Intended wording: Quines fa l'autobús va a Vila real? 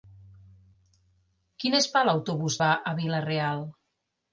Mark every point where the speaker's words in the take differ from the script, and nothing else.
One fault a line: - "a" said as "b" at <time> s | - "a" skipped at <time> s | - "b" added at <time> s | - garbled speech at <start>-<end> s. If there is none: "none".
none